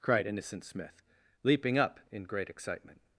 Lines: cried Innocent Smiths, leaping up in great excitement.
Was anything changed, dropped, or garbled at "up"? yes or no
no